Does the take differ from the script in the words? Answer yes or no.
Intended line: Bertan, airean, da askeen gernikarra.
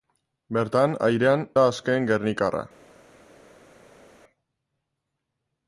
no